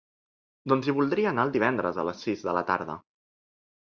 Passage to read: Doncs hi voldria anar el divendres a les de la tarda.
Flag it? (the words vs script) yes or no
yes